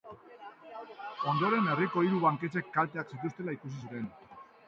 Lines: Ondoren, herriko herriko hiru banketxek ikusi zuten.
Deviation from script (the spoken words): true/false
true